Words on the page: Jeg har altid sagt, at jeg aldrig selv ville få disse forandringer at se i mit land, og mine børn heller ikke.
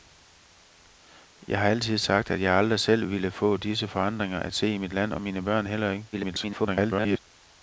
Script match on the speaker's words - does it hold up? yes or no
no